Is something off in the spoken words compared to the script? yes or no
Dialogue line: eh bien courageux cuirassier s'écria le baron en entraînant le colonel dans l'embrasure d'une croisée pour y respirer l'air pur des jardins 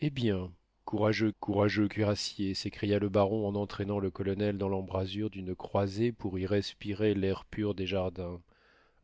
yes